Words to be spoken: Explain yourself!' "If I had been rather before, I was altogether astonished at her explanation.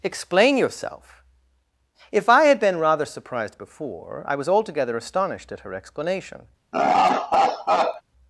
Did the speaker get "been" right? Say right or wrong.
right